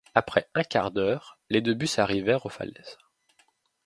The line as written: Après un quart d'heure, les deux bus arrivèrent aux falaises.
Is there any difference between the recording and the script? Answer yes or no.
no